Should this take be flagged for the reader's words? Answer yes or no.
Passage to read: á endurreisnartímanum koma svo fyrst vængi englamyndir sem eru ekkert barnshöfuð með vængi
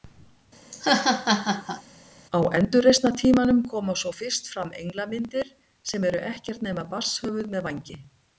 yes